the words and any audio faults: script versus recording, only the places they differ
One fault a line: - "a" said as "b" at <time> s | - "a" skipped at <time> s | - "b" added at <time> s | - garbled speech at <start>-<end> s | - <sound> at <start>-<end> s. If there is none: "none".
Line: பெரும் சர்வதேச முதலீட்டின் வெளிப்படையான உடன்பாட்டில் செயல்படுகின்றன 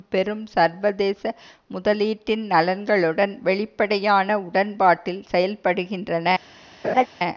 - "நலன்களுடன்" added at 2.5 s
- laugh at 6.8-7.1 s